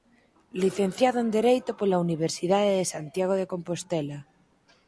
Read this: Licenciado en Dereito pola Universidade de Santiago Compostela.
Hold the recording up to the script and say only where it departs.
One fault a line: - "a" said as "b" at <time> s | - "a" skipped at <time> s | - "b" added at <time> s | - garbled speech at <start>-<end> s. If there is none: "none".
- "de" added at 3.4 s